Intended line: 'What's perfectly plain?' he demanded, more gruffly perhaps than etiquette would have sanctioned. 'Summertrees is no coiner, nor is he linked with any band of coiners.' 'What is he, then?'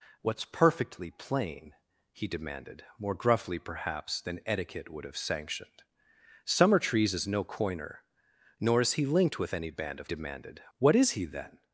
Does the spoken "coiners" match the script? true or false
false